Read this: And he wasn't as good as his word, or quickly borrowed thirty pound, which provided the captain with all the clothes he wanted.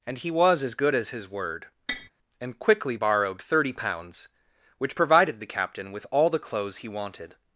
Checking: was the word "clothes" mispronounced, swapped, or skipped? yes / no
no